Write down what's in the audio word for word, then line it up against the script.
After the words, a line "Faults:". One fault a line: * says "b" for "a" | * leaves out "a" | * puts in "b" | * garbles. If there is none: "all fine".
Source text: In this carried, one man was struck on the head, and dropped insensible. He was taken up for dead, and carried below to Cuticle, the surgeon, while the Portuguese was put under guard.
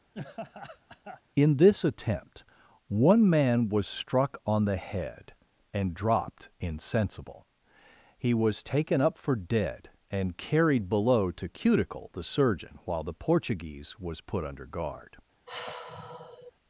In this attempt, one man was struck on the head, and dropped insensible. He was taken up for dead, and carried below to Cuticle, the surgeon, while the Portuguese was put under guard.
Faults:
* says "attempt" for "carried"